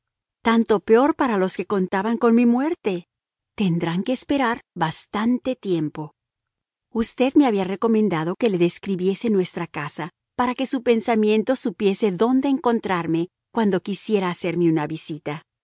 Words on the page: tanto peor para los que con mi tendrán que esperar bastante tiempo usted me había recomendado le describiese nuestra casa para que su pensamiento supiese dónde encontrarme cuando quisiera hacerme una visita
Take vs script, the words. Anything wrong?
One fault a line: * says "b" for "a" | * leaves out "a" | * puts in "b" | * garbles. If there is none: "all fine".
* puts in "contaban"
* puts in "muerte"
* puts in "que"